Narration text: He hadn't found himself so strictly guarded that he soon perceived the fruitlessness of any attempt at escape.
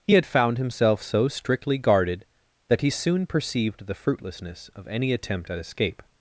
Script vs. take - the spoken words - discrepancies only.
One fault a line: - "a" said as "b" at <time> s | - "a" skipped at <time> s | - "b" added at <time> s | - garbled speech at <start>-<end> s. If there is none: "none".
- "hadn't" said as "had" at 0.1 s